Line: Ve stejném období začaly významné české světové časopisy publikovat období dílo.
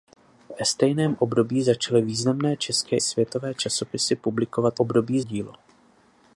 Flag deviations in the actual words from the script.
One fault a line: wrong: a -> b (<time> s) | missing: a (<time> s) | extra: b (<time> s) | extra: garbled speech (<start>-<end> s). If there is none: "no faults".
no faults